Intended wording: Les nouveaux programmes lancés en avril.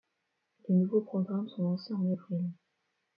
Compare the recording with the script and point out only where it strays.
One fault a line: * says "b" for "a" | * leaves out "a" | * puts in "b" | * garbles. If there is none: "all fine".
* puts in "sont"